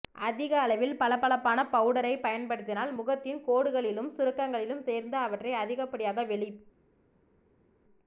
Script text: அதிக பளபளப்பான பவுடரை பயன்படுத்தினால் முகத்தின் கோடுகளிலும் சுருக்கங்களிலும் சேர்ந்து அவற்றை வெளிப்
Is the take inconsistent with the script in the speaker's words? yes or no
yes